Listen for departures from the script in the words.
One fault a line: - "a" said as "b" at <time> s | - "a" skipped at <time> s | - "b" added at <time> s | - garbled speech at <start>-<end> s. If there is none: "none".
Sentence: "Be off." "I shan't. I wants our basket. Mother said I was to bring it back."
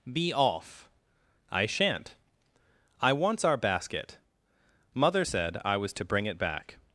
none